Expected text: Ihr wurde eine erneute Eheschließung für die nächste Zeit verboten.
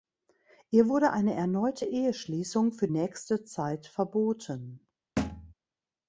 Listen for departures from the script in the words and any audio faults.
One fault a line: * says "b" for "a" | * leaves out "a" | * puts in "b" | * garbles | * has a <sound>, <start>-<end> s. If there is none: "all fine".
* leaves out "die"
* has a thud, 5.2-5.5 s